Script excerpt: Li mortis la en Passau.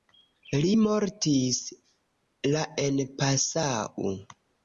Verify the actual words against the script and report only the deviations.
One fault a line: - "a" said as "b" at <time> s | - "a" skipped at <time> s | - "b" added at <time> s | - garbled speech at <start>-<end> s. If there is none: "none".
none